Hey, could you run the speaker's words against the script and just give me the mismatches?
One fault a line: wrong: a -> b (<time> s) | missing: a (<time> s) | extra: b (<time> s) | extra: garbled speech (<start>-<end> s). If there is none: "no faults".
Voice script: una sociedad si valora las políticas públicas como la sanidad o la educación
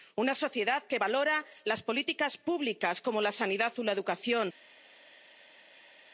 wrong: si -> que (0.8 s)